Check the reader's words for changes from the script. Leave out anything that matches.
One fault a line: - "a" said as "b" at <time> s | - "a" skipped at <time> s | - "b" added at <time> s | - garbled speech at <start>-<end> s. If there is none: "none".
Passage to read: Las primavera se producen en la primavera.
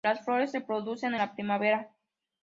- "primavera" said as "flores" at 0.2 s